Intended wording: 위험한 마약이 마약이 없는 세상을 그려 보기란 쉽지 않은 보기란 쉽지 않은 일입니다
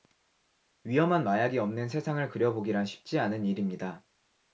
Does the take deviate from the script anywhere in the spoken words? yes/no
yes